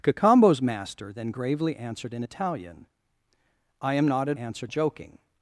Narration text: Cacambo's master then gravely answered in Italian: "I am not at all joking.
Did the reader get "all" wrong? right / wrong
wrong